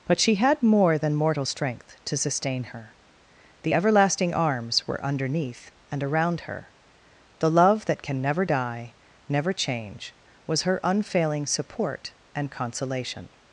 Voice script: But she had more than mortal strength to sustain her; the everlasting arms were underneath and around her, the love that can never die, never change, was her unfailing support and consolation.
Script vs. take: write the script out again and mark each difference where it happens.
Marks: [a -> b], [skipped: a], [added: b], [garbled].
But she had more than mortal strength to sustain her; the everlasting arms were underneath and around her, the love that can never die, never change, was her unfailing support and consolation.